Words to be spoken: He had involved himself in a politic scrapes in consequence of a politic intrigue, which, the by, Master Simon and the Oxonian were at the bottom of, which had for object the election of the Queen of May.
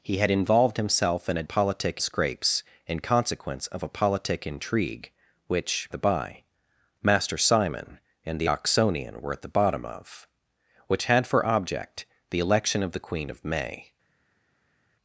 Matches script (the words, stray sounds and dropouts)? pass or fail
pass